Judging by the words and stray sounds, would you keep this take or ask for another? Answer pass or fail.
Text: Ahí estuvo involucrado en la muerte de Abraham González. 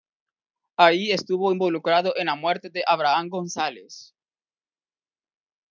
pass